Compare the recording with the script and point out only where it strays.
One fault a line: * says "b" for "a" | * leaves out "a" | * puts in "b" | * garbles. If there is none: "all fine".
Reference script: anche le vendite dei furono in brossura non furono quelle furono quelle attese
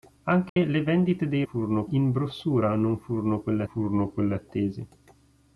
all fine